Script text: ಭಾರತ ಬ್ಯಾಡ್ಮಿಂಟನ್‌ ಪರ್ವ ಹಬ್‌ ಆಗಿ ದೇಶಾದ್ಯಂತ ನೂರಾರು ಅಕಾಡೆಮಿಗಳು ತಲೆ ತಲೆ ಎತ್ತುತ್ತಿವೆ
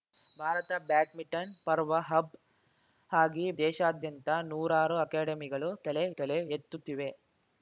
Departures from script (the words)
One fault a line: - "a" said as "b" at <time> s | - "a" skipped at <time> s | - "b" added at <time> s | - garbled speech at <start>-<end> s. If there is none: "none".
none